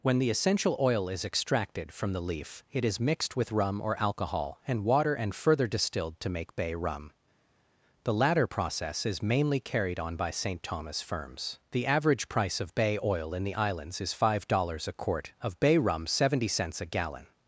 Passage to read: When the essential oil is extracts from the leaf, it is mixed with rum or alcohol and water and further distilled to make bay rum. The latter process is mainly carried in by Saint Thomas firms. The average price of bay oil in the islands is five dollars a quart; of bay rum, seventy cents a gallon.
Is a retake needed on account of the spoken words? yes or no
yes